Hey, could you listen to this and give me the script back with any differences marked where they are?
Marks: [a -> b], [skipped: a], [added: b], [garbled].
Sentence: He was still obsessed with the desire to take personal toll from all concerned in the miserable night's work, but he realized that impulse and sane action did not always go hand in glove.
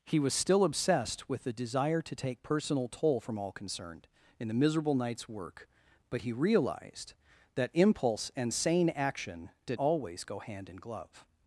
He was still obsessed with the desire to take personal toll from all concerned in the miserable night's work, but he realized that impulse and sane action did [skipped: not] always go hand in glove.